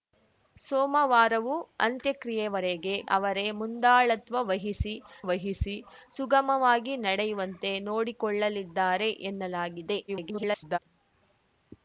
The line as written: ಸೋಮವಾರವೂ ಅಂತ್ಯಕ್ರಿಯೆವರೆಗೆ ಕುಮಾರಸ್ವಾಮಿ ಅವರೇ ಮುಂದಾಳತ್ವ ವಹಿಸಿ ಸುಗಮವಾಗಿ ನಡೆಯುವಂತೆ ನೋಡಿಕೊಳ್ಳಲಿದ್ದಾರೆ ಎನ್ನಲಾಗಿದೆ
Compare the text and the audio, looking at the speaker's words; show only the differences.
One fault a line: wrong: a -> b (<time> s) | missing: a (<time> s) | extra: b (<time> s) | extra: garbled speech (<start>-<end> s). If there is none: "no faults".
missing: ಕುಮಾರಸ್ವಾಮಿ (3.0 s)
extra: ವಹಿಸಿ (5.2 s)
extra: garbled speech (10.1-10.8 s)